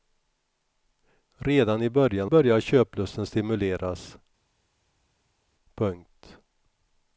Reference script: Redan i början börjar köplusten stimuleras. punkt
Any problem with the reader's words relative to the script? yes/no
no